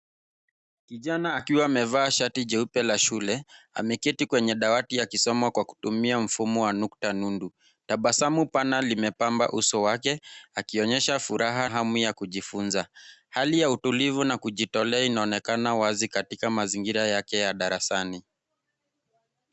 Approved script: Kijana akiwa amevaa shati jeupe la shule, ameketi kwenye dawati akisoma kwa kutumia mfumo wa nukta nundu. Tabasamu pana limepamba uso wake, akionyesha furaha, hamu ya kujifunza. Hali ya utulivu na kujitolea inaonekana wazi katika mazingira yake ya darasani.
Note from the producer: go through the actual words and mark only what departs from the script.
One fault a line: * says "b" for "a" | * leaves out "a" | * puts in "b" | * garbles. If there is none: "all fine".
all fine